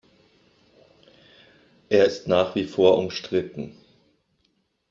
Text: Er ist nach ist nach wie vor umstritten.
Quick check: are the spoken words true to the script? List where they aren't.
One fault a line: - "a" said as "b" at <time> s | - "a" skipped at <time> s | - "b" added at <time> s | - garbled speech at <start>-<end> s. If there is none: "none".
- "ist nach" skipped at 2.5 s